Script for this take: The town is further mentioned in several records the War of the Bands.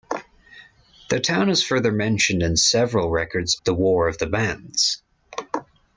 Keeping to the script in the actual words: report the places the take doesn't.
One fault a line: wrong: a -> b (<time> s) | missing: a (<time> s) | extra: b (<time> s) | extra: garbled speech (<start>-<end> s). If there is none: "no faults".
no faults